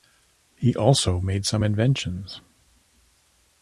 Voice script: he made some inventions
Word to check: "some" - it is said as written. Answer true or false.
true